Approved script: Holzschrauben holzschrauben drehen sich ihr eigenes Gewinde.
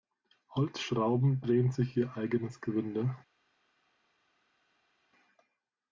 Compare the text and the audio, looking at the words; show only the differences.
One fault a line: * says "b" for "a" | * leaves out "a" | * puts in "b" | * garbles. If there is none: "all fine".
* leaves out "holzschrauben"